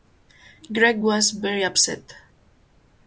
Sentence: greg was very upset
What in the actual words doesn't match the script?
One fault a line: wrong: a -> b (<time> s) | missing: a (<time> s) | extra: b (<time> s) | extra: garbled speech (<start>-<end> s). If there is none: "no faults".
no faults